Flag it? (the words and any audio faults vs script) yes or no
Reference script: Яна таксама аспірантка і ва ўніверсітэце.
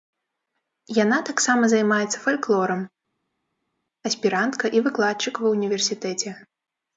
yes